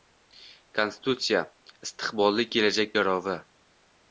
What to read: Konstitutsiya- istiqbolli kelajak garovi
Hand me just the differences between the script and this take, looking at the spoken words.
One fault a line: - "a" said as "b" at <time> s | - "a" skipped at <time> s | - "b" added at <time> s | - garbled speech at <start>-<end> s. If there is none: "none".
none